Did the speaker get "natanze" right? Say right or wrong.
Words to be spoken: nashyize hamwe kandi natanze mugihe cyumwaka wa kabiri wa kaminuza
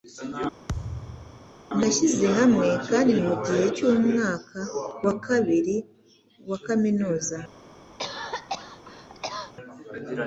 wrong